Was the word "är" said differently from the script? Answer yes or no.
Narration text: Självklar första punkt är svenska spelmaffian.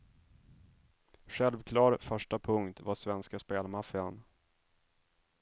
yes